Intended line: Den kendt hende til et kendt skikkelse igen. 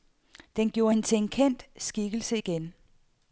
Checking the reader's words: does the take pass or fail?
fail